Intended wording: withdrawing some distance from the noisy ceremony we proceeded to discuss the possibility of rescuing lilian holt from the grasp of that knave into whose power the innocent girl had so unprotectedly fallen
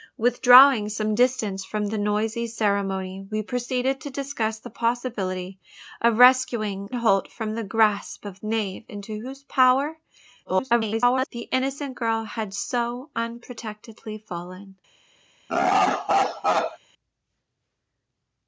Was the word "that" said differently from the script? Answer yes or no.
yes